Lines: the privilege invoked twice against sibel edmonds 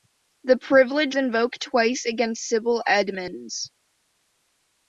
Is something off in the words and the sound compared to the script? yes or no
no